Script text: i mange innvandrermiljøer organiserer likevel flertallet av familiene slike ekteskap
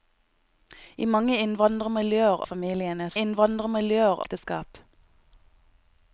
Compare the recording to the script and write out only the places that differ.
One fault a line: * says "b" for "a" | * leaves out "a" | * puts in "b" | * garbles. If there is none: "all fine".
* leaves out "organiserer likevel flertallet"
* says "innvandrermiljøer" for "slike"